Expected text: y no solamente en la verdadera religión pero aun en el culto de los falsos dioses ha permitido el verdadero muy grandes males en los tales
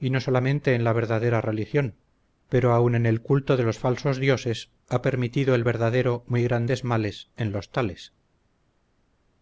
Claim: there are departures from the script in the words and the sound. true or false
false